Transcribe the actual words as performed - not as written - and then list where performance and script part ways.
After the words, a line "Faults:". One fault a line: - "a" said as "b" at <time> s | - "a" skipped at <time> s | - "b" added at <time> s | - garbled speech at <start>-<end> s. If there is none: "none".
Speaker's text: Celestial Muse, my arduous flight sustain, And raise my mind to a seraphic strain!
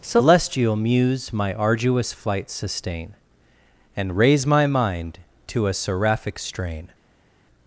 Celestial Muse, my arduous flight sustain, And raise my mind to a seraphic strain!
Faults:
none